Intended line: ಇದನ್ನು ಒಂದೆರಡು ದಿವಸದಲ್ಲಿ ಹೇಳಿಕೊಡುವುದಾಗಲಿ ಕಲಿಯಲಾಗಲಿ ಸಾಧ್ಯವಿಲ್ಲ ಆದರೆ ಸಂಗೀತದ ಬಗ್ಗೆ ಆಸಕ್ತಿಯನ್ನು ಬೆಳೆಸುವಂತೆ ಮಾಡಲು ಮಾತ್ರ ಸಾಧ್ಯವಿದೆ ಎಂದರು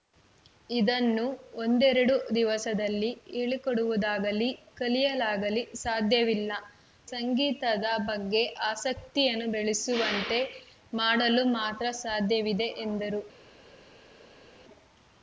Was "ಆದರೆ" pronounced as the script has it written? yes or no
no